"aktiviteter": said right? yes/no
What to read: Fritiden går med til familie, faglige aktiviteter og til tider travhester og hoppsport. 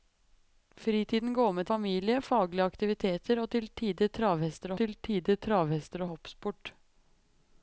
yes